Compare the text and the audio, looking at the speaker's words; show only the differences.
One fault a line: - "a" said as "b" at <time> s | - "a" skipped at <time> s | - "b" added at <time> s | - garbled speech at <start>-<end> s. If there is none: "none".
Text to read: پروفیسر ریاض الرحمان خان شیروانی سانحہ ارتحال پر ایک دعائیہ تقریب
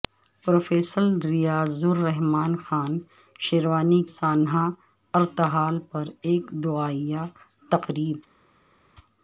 none